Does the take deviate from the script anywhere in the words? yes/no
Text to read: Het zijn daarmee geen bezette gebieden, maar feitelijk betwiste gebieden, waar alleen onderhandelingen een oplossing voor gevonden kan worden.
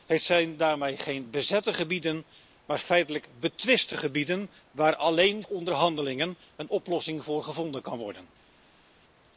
no